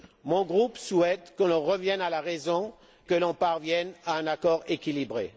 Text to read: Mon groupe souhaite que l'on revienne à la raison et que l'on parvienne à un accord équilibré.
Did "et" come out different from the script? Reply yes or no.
yes